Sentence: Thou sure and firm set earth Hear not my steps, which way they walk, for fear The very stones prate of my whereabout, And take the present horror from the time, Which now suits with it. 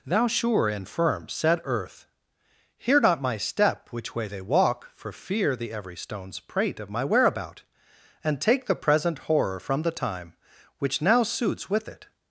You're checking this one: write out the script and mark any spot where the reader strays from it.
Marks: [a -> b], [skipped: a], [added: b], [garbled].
Thou sure and firm set earth Hear not my [steps, -> step] which way they walk, for fear The [very -> every] stones prate of my whereabout, And take the present horror from the time, Which now suits with it.